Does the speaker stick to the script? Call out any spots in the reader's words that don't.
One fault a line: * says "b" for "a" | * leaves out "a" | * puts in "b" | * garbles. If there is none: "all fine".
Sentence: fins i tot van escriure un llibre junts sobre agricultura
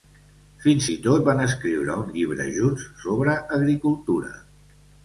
all fine